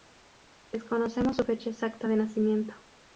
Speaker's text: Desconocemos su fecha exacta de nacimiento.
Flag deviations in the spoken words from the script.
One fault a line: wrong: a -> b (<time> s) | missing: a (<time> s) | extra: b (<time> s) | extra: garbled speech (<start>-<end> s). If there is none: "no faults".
no faults